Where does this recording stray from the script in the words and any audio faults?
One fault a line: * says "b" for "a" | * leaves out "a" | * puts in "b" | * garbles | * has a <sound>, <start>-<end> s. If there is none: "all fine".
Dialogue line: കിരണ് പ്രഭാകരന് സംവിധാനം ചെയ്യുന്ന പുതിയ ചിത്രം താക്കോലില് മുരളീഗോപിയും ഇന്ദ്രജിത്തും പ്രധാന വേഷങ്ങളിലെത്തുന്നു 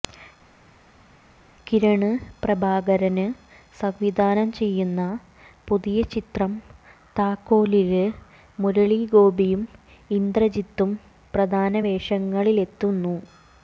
all fine